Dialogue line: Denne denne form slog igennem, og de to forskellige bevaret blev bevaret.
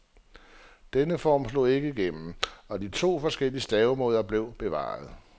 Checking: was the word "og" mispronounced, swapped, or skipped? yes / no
no